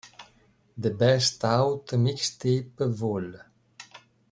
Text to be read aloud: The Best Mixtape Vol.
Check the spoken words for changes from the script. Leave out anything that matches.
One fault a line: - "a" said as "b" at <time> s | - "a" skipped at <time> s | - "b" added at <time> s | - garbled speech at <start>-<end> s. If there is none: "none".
- "Out" added at 1.4 s